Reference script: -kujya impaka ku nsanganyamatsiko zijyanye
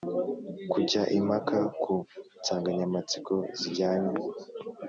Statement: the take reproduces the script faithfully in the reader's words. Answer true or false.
true